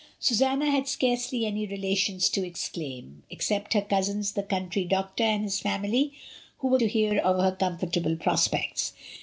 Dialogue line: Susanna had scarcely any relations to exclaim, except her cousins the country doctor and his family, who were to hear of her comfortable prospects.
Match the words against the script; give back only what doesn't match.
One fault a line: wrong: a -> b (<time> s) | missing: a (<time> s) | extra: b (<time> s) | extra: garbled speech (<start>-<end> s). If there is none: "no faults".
no faults